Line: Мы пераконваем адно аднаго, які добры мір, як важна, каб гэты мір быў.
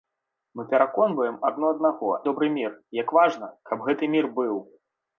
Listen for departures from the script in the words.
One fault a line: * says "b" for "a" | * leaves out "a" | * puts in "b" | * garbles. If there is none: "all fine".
* leaves out "які"